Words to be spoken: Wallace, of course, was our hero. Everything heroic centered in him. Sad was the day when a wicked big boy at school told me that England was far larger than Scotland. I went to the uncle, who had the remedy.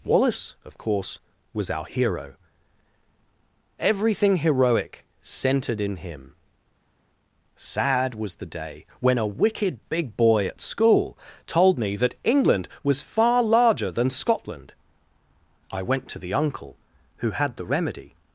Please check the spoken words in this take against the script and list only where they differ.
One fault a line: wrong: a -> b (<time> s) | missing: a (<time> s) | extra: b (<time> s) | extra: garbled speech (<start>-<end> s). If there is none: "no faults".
no faults